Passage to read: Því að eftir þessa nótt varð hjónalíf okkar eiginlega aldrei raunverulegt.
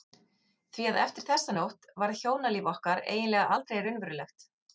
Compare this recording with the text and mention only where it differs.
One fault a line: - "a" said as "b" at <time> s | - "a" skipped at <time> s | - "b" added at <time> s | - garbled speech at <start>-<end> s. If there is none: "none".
none